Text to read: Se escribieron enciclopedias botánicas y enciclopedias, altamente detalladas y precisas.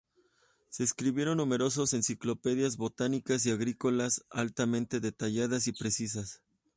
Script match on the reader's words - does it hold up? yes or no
no